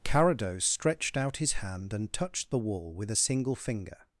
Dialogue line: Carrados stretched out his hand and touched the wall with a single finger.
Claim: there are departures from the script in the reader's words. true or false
false